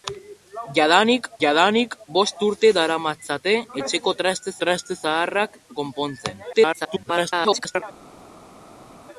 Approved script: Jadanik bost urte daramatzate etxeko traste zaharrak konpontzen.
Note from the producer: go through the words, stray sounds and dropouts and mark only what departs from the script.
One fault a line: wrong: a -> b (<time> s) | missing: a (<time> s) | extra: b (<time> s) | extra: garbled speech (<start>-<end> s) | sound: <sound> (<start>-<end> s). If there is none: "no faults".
extra: jadanik (1.4 s)
extra: traste (4.6 s)
extra: garbled speech (6.5-7.8 s)